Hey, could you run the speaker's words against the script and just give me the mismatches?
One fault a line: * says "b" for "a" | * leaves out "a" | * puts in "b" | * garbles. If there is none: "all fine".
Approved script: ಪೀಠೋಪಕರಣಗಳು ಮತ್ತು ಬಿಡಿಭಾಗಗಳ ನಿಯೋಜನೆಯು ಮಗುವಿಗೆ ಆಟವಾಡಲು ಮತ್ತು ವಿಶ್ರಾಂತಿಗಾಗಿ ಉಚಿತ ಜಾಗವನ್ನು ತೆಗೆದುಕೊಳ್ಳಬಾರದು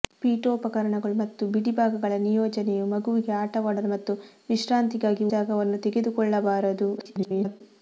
* leaves out "ಉಚಿತ"
* garbles